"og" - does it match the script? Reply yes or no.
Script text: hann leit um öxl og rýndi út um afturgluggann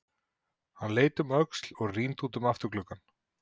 yes